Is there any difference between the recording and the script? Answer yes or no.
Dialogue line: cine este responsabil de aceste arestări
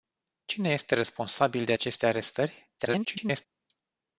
yes